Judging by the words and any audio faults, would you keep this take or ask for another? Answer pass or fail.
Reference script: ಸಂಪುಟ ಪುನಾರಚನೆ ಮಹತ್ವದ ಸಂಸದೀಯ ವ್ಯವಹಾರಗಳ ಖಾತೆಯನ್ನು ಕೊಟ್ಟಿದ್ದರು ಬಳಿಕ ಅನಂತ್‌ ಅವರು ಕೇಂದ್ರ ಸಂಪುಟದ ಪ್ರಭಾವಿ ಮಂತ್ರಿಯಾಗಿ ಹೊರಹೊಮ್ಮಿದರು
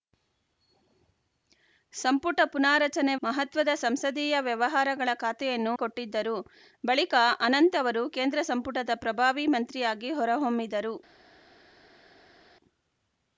pass